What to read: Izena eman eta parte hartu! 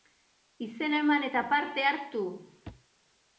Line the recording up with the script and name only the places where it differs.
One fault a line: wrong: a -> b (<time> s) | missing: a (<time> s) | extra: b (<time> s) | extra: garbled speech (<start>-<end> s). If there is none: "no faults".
no faults